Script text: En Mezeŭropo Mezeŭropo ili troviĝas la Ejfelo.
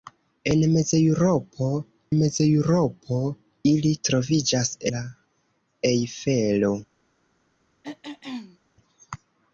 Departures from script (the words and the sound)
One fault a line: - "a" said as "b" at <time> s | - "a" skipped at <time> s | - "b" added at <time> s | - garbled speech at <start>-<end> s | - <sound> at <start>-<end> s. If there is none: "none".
- throat clearing at 7.8-8.6 s